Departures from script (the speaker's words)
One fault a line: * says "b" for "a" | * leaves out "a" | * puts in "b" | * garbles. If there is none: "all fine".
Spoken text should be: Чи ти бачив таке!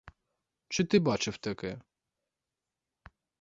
all fine